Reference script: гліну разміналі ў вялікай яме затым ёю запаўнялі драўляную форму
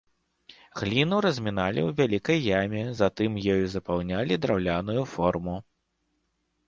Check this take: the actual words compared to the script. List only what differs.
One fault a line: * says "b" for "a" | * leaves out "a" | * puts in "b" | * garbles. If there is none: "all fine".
all fine